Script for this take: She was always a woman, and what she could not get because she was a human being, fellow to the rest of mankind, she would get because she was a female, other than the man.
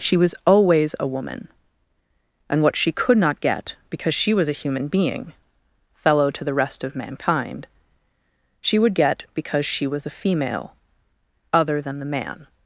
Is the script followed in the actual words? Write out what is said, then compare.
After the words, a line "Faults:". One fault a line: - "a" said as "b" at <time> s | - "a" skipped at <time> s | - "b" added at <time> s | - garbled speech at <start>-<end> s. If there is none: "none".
She was always a woman, and what she could not get because she was a human being, fellow to the rest of mankind, she would get because she was a female, other than the man.
Faults:
none